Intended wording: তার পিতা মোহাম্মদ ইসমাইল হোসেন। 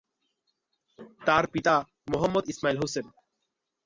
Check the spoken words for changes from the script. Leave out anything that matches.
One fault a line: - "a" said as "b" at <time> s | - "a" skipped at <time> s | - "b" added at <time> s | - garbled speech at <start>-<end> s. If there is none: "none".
none